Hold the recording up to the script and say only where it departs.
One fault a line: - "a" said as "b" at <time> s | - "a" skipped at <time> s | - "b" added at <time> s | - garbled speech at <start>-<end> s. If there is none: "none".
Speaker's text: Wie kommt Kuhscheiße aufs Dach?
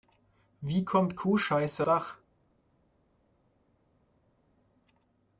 - "aufs" skipped at 1.9 s